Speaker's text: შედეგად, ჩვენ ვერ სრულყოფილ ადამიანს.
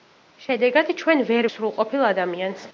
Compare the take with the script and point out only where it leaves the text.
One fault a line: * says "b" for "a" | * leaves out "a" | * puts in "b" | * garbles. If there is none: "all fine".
all fine